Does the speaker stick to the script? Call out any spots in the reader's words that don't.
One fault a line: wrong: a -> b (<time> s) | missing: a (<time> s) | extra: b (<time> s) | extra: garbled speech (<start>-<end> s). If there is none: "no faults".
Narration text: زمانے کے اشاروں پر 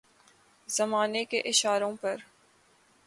no faults